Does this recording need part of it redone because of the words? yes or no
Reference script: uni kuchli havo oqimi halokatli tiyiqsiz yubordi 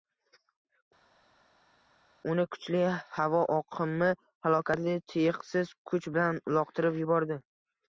yes